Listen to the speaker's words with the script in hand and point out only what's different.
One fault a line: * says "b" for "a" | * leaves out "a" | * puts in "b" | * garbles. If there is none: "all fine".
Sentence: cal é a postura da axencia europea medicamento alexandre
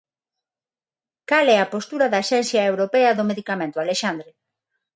* puts in "do"